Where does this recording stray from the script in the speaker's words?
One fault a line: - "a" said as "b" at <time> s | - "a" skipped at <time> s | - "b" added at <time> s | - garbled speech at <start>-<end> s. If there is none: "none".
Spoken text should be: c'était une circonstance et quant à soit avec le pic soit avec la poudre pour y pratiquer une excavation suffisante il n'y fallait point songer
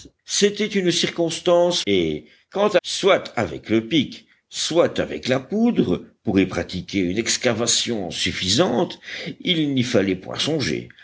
none